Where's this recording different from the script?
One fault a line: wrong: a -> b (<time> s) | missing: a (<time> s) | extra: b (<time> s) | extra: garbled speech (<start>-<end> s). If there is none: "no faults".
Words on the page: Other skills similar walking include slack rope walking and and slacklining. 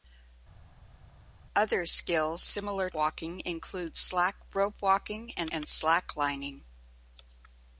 no faults